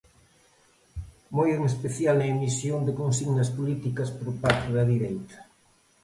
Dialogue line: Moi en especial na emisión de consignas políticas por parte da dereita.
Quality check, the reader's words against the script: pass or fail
pass